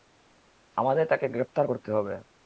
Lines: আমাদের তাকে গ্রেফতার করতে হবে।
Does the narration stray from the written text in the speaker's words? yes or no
no